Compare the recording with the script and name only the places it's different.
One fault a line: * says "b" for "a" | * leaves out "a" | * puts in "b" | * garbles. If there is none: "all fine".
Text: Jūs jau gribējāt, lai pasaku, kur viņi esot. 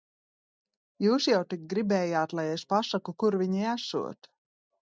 * puts in "tik"
* puts in "es"